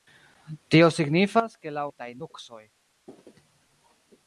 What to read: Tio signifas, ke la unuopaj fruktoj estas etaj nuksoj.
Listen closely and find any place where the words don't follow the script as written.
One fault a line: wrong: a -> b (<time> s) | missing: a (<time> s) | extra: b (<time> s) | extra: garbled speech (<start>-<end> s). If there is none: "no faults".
missing: unuopaj fruktoj estas (1.8 s)